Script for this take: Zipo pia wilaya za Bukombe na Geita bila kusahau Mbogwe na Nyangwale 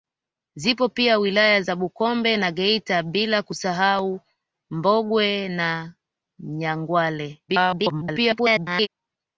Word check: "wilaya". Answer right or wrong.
right